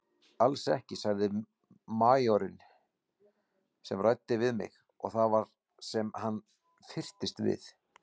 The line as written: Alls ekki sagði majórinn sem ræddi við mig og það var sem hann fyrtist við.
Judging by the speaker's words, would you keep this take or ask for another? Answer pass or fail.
pass